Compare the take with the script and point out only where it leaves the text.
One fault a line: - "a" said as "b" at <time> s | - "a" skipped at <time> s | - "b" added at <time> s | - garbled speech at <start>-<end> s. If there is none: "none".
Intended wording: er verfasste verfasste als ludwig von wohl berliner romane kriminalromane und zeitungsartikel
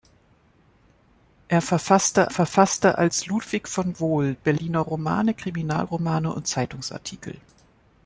none